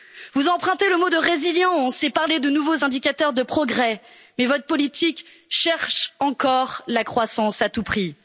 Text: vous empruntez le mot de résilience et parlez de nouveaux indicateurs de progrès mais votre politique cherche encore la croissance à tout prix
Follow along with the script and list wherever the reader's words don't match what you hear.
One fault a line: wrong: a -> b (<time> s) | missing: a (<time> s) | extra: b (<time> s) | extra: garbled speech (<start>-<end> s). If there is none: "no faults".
no faults